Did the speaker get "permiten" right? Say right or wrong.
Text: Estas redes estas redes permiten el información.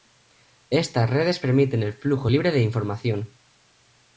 wrong